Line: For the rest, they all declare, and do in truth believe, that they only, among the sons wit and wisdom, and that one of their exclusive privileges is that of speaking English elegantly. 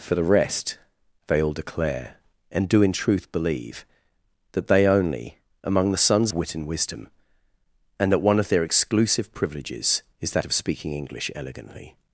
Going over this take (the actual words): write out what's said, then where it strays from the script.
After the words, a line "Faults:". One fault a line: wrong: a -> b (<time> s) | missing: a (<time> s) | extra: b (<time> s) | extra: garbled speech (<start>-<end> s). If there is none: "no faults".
For the rest, they all declare, and do in truth believe, that they only, among the sons wit and wisdom, and that one of their exclusive privileges is that of speaking English elegantly.
Faults:
no faults